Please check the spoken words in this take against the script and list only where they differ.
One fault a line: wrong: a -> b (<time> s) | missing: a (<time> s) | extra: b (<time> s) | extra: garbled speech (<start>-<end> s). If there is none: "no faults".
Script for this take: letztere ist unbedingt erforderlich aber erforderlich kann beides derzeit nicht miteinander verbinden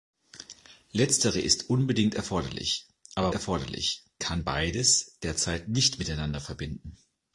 no faults